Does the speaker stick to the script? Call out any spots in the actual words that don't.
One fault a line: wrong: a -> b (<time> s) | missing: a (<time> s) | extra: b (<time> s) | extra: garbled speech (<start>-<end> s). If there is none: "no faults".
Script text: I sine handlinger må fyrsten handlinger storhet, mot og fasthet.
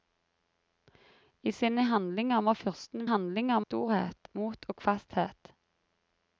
no faults